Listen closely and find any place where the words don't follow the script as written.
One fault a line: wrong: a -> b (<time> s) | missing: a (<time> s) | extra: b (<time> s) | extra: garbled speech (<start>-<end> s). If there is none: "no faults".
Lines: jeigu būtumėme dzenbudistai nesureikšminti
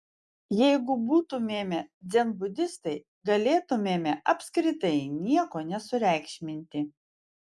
extra: galėtumėme apskritai nieko (3.3 s)